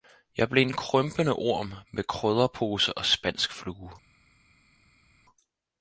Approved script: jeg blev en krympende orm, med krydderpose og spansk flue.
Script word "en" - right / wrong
right